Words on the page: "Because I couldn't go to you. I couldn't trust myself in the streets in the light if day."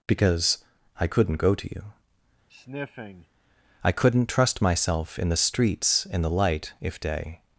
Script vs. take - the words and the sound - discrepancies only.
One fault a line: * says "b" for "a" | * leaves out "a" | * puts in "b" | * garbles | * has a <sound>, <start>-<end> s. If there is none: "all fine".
* has a sniff, 2.5-3.3 s